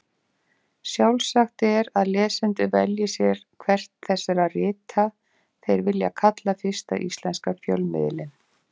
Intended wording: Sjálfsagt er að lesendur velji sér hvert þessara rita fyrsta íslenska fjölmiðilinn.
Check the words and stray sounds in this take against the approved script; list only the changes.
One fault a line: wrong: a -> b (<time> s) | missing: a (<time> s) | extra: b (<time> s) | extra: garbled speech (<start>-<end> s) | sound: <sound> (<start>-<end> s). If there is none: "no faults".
extra: þeir vilja kalla (5.7 s)